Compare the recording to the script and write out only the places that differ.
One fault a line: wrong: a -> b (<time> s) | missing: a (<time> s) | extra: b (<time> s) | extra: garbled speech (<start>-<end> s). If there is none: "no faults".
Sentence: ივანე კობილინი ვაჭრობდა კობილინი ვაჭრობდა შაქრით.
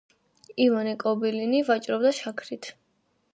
missing: კობილინი ვაჭრობდა (2.1 s)